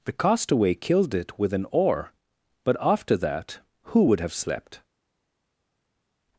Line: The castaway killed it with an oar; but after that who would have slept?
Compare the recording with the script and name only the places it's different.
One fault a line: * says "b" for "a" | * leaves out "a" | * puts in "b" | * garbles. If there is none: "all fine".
all fine